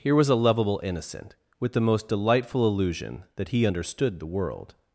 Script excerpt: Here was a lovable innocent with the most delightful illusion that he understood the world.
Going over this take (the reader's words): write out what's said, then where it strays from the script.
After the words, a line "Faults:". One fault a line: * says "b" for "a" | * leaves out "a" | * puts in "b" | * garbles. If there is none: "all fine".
Here was a lovable innocent with the most delightful illusion that he understood the world.
Faults:
all fine